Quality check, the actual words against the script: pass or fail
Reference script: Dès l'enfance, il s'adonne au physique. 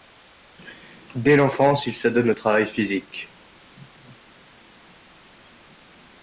fail